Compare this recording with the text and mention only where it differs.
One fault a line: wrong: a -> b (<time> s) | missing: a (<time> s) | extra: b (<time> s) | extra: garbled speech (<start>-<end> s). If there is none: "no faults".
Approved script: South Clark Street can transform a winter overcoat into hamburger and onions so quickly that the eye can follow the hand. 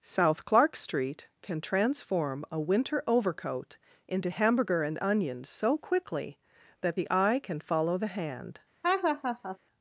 no faults